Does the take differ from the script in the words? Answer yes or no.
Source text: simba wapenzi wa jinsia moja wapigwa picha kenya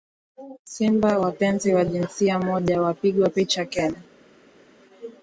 no